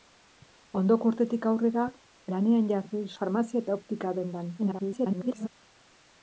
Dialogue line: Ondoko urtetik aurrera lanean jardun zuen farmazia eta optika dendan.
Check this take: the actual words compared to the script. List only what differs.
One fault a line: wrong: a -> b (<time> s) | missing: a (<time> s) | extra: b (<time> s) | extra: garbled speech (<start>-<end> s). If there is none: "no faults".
missing: zuen (3.0 s)
extra: garbled speech (4.6-5.5 s)